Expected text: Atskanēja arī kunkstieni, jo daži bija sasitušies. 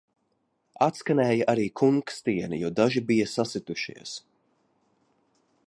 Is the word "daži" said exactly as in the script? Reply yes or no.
yes